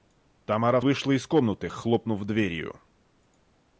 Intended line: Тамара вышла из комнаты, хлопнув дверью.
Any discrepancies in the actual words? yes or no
no